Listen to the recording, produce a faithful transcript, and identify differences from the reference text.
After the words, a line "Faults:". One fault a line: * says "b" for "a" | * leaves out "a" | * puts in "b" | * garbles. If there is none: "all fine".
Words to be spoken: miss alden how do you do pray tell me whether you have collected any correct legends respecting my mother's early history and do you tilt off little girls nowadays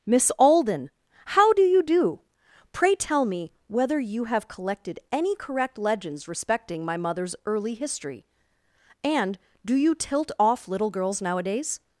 miss alden how do you do pray tell me whether you have collected any correct legends respecting my mother's early history and do you tilt off little girls nowadays
Faults:
all fine